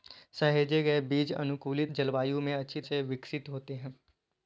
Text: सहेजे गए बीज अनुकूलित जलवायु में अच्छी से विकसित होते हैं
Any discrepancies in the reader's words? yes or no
no